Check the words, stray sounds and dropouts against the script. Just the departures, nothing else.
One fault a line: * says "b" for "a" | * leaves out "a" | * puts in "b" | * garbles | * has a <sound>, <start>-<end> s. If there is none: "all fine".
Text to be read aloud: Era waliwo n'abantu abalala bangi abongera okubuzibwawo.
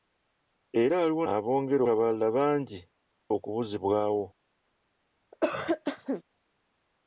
* says "abongera" for "n'abantu"
* leaves out "abongera"
* has a cough, 5.3-6.2 s